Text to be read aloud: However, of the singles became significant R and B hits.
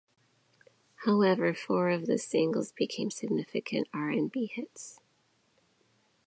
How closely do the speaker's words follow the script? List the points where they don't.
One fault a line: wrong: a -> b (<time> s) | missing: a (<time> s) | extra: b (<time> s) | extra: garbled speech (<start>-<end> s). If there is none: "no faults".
extra: four (1.5 s)